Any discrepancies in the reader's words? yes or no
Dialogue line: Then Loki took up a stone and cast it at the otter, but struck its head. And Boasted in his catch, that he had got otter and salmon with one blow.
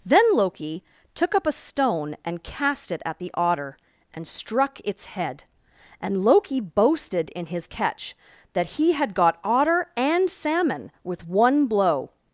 yes